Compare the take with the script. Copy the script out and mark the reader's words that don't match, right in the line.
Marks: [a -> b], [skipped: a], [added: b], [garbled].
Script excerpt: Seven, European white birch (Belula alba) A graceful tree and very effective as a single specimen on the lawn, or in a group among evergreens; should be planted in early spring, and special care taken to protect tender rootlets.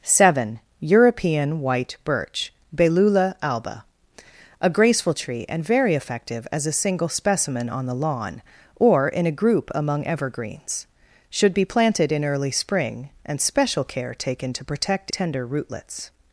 Seven, European white birch (Belula alba) A graceful tree and very effective as a single specimen on the lawn, or in a group among evergreens; should be planted in early spring, and special care taken to protect tender rootlets.